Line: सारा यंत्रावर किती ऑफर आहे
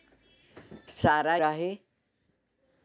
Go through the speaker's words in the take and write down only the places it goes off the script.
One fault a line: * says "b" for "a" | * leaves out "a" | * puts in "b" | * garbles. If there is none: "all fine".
* leaves out "यंत्रावर किती ऑफर"